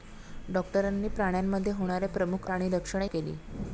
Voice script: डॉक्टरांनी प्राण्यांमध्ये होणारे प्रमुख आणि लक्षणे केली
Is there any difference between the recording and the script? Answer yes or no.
no